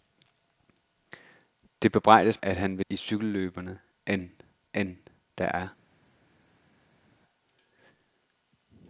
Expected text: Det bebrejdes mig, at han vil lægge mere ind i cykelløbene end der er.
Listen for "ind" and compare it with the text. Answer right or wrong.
wrong